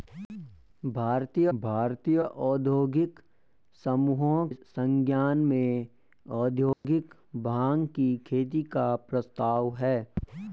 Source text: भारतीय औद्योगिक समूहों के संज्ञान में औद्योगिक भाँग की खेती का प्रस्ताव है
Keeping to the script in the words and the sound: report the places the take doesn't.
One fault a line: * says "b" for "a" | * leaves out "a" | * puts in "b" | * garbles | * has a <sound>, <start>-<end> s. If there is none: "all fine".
* puts in "भारतीय"
* leaves out "के"
* has a dropout, 6.7-6.8 s